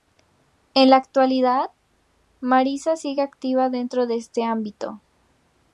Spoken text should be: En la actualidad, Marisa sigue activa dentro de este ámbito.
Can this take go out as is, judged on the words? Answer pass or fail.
pass